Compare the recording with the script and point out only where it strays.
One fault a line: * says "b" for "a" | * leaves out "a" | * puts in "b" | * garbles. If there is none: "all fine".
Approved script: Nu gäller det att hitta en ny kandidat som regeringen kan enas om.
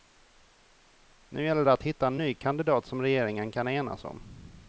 all fine